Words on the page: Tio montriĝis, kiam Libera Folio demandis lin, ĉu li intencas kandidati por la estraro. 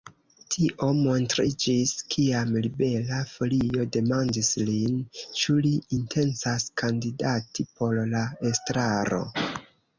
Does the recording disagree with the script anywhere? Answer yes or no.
no